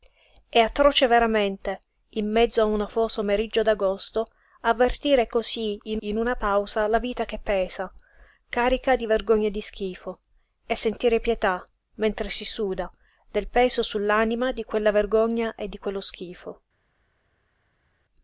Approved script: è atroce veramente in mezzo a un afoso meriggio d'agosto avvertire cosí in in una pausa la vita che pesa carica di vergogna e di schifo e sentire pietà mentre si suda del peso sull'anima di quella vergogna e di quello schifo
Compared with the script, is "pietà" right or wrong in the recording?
right